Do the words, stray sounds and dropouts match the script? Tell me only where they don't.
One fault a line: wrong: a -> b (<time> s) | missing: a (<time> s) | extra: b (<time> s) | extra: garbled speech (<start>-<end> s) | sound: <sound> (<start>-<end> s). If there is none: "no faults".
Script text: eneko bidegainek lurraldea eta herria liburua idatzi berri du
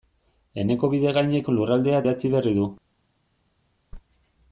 missing: eta herria liburua (2.0 s)